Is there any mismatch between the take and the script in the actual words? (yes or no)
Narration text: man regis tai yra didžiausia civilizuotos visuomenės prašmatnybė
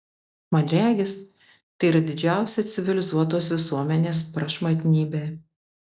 no